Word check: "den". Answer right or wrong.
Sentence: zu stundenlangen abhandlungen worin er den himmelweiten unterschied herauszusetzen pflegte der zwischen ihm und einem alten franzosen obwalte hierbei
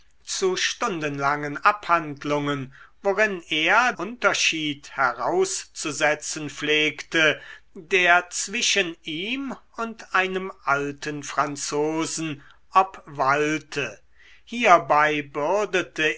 wrong